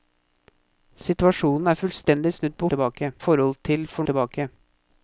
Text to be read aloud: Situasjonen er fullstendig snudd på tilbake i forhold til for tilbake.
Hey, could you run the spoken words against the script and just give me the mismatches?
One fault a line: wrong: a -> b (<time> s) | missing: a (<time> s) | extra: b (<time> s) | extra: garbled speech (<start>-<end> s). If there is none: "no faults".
no faults